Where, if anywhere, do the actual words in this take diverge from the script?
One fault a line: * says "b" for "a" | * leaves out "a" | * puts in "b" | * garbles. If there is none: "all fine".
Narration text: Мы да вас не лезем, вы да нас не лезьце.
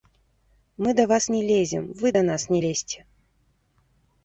all fine